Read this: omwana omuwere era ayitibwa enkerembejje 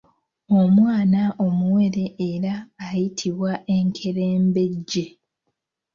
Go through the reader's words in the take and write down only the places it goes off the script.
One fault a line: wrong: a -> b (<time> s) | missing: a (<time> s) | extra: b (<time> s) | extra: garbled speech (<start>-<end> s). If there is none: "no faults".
no faults